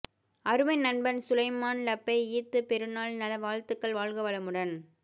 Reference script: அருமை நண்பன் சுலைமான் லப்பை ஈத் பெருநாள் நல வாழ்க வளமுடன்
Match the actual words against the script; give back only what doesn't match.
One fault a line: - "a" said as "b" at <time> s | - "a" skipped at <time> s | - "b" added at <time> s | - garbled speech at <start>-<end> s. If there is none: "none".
- "வாழ்த்துக்கள்" added at 3.4 s